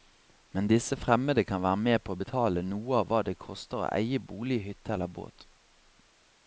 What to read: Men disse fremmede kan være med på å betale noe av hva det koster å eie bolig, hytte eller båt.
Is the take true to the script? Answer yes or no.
yes